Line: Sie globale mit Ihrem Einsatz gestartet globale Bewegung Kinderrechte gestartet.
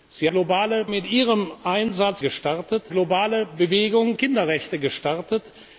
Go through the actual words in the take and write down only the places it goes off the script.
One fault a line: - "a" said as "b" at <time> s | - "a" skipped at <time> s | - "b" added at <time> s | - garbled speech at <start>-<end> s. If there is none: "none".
none